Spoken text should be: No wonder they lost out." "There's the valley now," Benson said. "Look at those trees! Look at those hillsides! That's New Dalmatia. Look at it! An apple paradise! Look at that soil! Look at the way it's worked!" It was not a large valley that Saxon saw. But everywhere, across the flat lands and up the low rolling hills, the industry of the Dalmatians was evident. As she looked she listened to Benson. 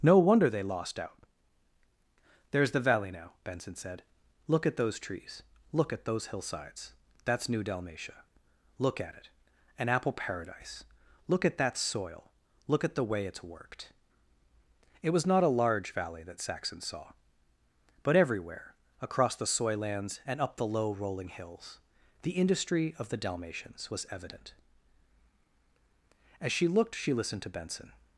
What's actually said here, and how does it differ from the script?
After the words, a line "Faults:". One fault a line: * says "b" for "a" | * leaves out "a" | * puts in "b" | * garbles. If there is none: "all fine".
No wonder they lost out." "There's the valley now," Benson said. "Look at those trees! Look at those hillsides! That's New Dalmatia. Look at it! An apple paradise! Look at that soil! Look at the way it's worked!" It was not a large valley that Saxon saw. But everywhere, across the soy lands and up the low rolling hills, the industry of the Dalmatians was evident. As she looked she listened to Benson.
Faults:
* says "soy" for "flat"